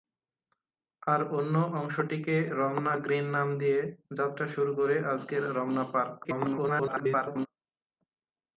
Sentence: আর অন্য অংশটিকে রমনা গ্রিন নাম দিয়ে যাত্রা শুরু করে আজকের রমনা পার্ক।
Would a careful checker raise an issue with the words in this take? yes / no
yes